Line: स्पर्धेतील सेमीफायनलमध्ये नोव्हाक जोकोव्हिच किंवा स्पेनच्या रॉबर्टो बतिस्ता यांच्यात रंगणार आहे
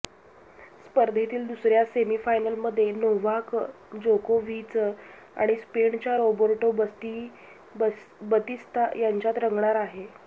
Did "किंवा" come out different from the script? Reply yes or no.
yes